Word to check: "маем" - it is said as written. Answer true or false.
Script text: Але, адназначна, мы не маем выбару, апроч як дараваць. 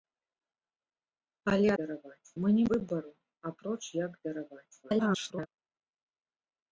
false